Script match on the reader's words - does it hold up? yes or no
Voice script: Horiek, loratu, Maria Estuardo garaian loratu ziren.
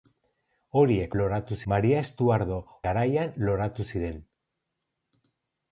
yes